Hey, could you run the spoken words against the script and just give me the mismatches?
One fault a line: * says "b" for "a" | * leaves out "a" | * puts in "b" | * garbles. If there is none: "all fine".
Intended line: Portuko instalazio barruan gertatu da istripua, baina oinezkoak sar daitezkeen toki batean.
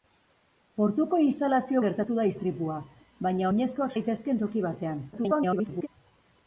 * leaves out "barruan"
* leaves out "sar"
* garbles